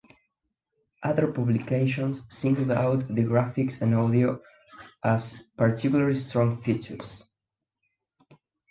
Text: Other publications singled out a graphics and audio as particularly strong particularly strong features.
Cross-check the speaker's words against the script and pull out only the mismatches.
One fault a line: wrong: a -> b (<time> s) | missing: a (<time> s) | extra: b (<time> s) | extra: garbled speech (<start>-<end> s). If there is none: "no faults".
wrong: a -> the (3.1 s)
missing: particularly strong (6.6 s)